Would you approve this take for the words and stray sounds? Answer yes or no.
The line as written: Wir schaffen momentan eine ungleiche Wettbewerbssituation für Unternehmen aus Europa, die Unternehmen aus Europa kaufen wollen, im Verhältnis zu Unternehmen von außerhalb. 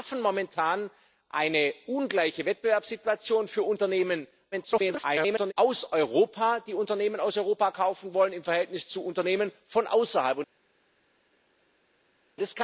no